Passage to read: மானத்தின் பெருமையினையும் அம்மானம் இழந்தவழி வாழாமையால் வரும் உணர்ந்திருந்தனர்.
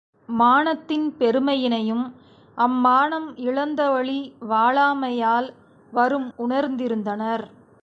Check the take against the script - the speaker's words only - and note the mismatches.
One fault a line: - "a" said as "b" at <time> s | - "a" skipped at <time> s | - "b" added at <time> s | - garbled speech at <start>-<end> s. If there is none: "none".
none